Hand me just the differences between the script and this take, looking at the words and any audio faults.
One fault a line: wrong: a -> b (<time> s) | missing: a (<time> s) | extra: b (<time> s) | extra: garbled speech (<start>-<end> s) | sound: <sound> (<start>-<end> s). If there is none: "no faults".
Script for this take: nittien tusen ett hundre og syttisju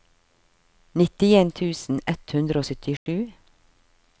sound: dropout (3.0-3.1 s)